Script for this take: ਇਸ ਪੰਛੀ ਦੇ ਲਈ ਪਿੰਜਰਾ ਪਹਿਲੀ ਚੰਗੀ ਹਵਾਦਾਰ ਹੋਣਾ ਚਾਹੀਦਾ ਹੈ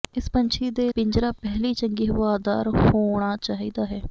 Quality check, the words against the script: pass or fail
fail